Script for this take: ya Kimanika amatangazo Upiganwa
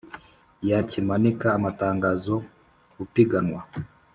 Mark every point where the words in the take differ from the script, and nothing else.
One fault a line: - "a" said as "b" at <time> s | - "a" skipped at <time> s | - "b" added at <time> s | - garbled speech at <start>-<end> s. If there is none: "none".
none